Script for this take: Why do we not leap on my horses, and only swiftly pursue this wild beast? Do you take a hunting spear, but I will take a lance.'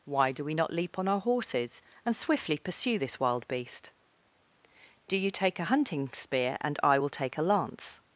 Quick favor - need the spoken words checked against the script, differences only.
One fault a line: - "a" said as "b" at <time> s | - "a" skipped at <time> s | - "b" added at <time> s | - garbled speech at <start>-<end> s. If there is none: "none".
- "my" said as "our" at 1.1 s
- "only" skipped at 2.2 s
- "but" said as "and" at 6.6 s